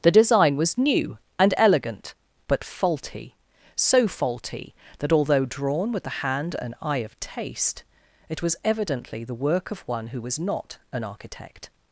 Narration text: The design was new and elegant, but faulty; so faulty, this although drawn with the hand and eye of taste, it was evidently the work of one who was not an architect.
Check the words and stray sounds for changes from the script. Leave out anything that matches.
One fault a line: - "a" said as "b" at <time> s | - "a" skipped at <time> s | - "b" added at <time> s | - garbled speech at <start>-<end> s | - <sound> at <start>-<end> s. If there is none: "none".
- "this" said as "that" at 5.0 s